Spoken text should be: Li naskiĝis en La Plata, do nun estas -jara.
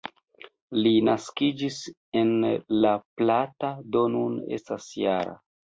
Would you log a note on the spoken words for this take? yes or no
no